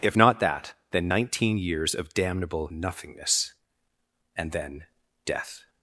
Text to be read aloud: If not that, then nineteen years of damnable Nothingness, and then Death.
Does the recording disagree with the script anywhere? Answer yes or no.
no